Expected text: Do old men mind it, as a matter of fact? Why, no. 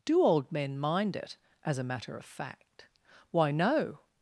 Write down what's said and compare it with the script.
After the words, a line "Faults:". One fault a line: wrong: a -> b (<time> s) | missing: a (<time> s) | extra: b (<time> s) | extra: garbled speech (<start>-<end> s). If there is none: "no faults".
Do old men mind it, as a matter of fact? Why, no.
Faults:
no faults